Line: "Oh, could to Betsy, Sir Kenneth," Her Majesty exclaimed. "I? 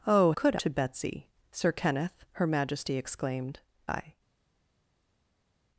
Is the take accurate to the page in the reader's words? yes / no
yes